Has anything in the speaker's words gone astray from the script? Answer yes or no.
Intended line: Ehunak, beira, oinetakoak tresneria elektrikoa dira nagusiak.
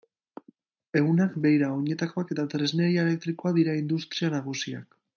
yes